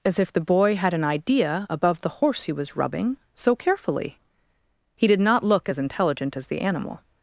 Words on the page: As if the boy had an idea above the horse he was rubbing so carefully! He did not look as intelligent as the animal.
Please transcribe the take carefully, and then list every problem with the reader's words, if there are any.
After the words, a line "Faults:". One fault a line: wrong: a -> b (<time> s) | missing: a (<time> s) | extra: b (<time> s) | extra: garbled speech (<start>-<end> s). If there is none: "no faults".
As if the boy had an idea above the horse he was rubbing so carefully! He did not look as intelligent as the animal.
Faults:
no faults